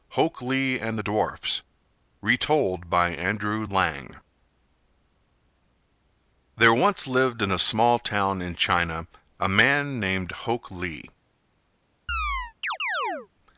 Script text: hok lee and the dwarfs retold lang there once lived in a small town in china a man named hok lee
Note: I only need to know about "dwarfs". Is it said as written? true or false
true